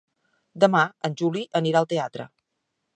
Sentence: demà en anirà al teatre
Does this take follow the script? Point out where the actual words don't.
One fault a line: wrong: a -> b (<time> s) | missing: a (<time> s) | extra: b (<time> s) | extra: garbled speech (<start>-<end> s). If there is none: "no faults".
extra: juli (1.2 s)